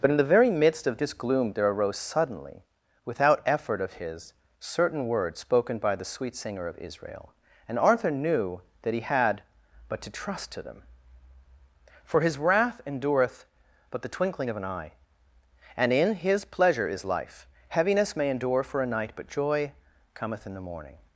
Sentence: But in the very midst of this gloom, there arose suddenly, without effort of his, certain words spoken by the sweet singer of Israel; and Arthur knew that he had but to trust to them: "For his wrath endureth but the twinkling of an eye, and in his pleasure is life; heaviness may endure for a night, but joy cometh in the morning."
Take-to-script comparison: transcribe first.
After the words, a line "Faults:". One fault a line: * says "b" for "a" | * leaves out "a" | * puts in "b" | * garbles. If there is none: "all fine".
But in the very midst of this gloom, there arose suddenly, without effort of his, certain words spoken by the sweet singer of Israel; and Arthur knew that he had but to trust to them: "For his wrath endureth but the twinkling of an eye, and in his pleasure is life; heaviness may endure for a night, but joy cometh in the morning."
Faults:
all fine